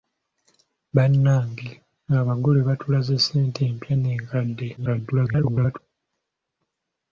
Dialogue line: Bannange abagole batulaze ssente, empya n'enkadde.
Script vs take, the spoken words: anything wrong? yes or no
yes